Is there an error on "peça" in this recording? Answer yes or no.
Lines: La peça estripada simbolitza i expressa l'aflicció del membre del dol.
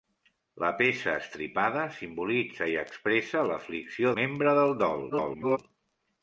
no